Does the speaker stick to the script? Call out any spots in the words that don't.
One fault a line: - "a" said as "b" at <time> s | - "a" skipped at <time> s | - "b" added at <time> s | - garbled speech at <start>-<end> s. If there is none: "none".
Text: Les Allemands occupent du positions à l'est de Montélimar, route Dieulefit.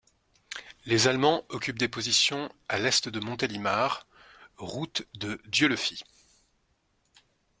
- "du" said as "des" at 1.8 s
- "de" added at 5.1 s